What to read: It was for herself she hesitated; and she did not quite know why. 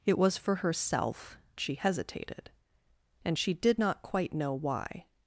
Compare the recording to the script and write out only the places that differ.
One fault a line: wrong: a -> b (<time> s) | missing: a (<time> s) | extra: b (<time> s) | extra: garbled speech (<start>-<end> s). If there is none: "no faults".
no faults